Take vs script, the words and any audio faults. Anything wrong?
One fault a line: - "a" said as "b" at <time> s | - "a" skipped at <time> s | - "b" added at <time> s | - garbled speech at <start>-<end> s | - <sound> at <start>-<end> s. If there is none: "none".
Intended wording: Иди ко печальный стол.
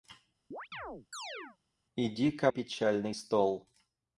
- chirp at 0.5-1.6 s